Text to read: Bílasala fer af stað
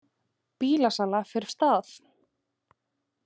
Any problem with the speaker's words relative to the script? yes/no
no